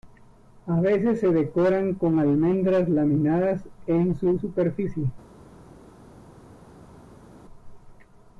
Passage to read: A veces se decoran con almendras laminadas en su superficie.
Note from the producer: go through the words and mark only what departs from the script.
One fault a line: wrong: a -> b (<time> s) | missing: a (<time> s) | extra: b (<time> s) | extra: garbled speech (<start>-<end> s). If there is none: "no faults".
no faults